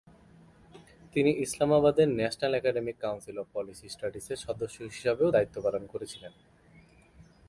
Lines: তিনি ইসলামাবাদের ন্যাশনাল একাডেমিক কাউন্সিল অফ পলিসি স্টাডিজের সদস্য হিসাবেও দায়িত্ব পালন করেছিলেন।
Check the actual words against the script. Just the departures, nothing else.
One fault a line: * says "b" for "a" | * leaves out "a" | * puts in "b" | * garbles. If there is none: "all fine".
all fine